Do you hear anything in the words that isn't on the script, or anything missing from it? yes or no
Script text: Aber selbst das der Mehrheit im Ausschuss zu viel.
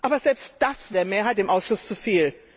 no